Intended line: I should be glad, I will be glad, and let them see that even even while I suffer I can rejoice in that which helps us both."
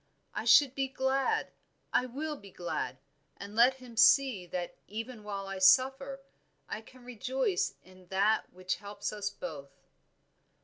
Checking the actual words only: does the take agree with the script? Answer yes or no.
no